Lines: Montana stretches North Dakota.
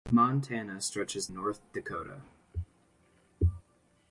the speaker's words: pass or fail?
pass